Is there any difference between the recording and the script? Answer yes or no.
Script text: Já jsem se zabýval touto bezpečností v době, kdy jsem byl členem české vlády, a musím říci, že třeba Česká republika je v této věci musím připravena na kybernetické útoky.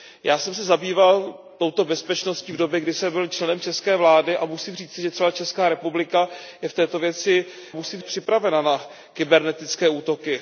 no